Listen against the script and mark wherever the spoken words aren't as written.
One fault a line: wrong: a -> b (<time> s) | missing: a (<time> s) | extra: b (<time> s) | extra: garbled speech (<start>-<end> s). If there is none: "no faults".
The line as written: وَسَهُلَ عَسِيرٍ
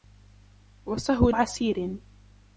no faults